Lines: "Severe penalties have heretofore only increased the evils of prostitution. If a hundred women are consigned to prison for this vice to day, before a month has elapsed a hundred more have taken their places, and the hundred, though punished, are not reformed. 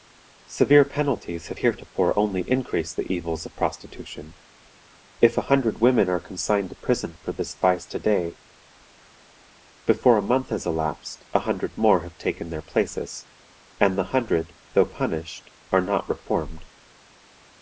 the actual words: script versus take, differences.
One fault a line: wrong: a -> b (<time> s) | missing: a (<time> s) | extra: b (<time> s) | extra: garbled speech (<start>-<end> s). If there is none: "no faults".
no faults